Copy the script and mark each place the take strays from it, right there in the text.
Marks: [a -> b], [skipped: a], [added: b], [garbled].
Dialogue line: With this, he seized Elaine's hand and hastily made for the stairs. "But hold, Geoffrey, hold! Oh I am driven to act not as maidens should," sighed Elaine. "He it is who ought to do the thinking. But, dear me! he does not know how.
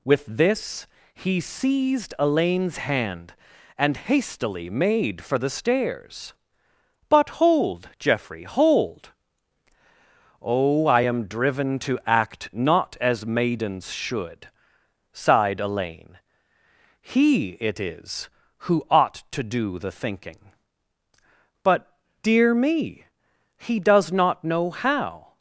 With this, he seized Elaine's hand and hastily made for the stairs. "But hold, Geoffrey, hold! Oh I am driven to act not as maidens should," sighed Elaine. "He it is who ought to do the thinking. But, dear me! he does not know how.